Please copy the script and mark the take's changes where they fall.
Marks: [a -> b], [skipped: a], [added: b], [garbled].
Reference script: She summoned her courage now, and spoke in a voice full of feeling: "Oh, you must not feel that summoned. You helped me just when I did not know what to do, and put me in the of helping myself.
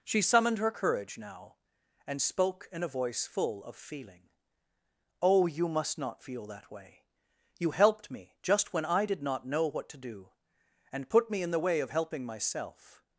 She summoned her courage now, and spoke in a voice full of feeling: "Oh, you must not feel that [summoned. -> way] You helped me just when I did not know what to do, and put me in the [added: way] of helping myself.